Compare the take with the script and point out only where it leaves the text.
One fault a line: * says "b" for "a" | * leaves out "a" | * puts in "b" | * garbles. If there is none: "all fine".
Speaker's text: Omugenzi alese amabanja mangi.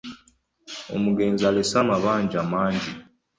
all fine